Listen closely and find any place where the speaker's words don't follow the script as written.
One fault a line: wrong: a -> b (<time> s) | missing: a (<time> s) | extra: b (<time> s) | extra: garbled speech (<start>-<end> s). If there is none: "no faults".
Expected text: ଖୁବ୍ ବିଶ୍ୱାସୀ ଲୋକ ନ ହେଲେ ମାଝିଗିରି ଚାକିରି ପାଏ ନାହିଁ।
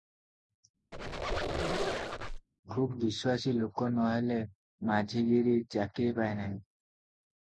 no faults